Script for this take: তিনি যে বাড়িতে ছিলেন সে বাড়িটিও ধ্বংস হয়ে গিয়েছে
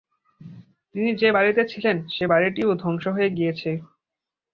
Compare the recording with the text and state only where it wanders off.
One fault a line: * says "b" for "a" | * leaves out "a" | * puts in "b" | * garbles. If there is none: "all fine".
all fine